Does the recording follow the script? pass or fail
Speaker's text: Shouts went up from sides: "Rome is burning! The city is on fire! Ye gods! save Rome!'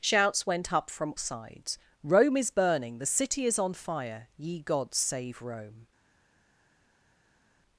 pass